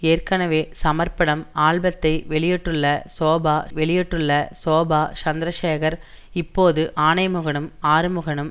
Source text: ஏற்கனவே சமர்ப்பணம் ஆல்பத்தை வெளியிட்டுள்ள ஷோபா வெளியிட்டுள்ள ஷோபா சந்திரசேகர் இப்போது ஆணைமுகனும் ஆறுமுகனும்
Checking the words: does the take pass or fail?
pass